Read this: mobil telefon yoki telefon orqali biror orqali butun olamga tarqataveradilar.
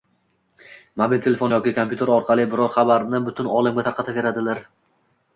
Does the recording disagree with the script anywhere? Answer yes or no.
yes